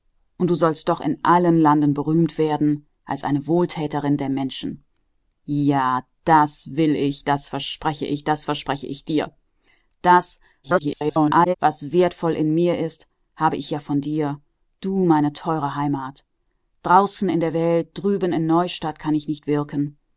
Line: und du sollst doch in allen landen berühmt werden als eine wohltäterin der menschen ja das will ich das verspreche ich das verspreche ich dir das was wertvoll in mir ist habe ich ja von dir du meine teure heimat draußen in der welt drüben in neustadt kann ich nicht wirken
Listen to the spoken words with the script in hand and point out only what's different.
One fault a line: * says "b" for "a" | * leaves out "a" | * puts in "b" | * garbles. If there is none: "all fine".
* garbles